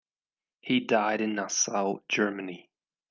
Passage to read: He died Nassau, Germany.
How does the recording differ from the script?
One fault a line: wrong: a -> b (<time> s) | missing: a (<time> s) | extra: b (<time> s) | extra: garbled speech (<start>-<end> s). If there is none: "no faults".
extra: in (1.2 s)